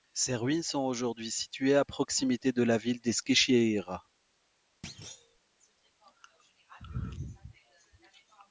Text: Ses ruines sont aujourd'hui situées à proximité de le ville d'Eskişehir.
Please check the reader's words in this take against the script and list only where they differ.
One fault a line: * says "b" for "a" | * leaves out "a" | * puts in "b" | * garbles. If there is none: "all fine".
* says "la" for "le"